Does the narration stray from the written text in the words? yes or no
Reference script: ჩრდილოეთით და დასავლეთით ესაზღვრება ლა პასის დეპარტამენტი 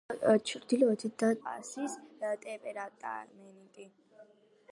yes